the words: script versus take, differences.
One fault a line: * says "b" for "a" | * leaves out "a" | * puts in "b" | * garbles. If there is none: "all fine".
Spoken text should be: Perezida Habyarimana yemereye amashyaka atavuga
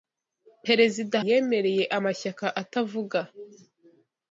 * leaves out "Habyarimana"